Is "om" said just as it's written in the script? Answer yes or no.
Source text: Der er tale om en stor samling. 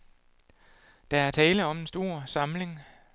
yes